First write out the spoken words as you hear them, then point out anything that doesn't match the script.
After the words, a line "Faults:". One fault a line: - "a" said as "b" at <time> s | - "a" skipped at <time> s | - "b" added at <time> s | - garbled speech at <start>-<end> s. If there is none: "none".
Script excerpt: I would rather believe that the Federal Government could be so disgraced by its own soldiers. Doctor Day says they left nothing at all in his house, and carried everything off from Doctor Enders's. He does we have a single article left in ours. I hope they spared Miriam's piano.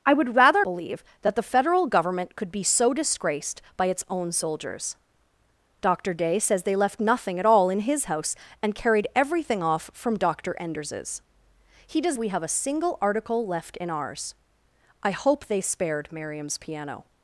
I would rather believe that the Federal Government could be so disgraced by its own soldiers. Doctor Day says they left nothing at all in his house, and carried everything off from Doctor Enders's. He does we have a single article left in ours. I hope they spared Miriam's piano.
Faults:
none